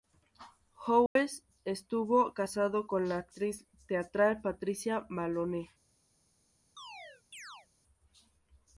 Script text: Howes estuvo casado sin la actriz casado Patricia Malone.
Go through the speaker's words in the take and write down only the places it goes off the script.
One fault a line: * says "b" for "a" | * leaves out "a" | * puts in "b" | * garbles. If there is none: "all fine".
* says "con" for "sin"
* says "teatral" for "casado"